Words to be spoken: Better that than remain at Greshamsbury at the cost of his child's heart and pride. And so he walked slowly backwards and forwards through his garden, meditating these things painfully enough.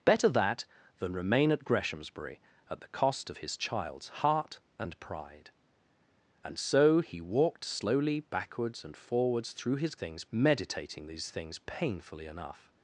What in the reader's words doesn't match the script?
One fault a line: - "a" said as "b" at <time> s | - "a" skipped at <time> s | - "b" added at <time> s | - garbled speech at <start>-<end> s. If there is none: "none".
- "garden" said as "things" at 10.0 s